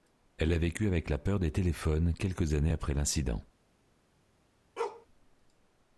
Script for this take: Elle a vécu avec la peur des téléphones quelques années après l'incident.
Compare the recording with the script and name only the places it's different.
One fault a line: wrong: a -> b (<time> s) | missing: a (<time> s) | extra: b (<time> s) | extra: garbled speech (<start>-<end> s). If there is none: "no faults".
no faults